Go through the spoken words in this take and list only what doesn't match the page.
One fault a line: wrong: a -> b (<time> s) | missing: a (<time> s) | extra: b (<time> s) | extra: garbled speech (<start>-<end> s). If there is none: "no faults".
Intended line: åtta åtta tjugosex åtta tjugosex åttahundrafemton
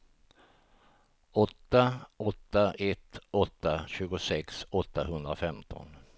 wrong: tjugosex -> ett (2.8 s)